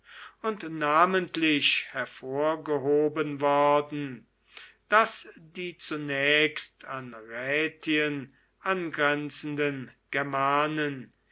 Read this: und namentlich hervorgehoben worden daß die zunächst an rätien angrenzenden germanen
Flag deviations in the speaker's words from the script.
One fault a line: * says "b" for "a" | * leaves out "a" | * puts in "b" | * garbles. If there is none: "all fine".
all fine